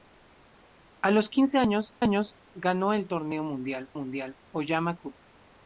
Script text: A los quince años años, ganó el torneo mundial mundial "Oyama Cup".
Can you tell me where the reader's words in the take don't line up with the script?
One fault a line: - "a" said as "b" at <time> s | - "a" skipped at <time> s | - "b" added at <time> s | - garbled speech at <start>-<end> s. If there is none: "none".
none